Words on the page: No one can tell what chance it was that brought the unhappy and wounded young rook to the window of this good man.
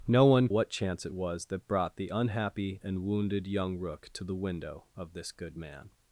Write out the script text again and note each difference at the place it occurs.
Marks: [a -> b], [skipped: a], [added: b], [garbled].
No one [skipped: can tell] what chance it was that brought the unhappy and wounded young rook to the window of this good man.